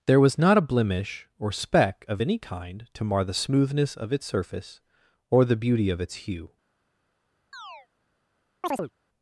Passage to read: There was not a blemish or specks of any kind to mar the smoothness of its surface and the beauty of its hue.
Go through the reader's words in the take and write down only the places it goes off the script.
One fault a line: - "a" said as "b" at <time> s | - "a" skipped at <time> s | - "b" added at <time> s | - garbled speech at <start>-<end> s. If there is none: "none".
- "specks" said as "speck" at 1.5 s
- "and" said as "or" at 5.3 s